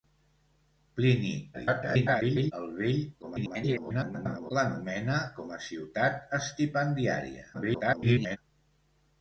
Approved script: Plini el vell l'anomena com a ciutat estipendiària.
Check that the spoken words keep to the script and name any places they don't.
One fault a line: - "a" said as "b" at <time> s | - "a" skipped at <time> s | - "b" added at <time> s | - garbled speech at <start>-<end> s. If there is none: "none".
- garbled speech at 1.5-2.5 s
- garbled speech at 3.2-4.5 s
- garbled speech at 7.5-8.4 s